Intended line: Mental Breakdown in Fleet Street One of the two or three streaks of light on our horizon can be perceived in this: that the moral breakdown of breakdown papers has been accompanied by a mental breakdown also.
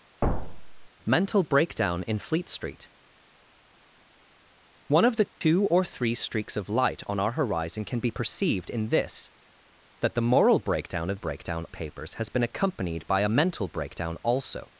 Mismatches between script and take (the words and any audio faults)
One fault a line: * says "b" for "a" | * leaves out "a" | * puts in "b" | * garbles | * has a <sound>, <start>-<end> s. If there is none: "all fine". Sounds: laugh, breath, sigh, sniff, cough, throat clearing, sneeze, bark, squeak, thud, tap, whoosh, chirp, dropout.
* has a thud, 0.2-0.9 s
* has a dropout, 5.3-5.4 s